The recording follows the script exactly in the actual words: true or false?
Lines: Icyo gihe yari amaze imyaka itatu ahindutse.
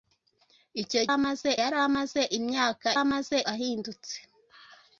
false